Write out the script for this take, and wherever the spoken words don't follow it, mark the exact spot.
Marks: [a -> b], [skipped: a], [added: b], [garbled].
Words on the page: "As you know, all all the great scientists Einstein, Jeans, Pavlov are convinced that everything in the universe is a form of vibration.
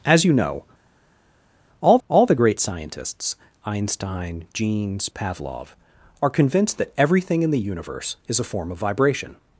"As you know, all all the great scientists Einstein, Jeans, Pavlov are convinced that everything in the universe is a form of vibration.